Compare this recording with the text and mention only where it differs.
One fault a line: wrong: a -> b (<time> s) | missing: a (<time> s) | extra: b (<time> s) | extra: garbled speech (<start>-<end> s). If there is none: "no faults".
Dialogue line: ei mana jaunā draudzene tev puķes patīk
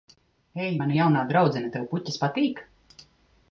no faults